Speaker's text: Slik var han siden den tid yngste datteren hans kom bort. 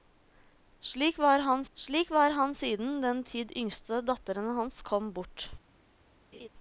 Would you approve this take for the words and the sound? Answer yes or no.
no